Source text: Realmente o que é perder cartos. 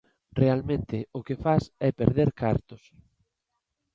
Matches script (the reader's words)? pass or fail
fail